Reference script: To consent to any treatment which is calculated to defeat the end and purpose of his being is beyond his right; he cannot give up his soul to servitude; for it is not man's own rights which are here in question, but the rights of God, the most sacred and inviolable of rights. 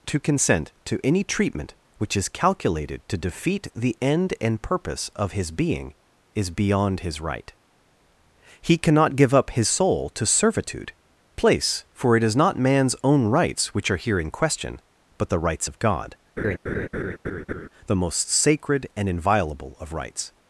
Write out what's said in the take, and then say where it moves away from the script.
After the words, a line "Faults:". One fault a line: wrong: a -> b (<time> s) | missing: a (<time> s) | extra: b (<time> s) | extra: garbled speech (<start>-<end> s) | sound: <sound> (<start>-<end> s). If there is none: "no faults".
To consent to any treatment which is calculated to defeat the end and purpose of his being is beyond his right; he cannot give up his soul to servitude; place for it is not man's own rights which are here in question, but the rights of God, the most sacred and inviolable of rights.
Faults:
extra: place (11.4 s)
sound: laugh (16.4-17.7 s)